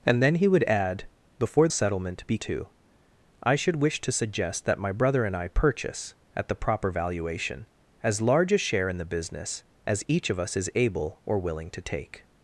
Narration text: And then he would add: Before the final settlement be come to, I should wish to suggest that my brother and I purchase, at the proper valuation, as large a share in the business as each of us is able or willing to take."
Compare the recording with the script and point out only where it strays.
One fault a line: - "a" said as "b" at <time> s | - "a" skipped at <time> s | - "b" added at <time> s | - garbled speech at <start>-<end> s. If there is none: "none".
- "the final" skipped at 1.7 s
- "come" skipped at 2.4 s